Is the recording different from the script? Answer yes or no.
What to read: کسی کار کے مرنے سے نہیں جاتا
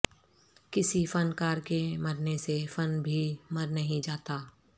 yes